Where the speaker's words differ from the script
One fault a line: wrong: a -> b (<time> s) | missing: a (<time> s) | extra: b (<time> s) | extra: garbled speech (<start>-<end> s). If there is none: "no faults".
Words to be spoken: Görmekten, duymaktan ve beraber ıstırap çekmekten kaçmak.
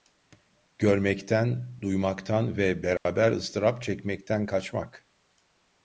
no faults